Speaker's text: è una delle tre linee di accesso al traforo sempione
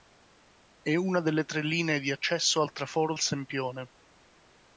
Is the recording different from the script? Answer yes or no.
no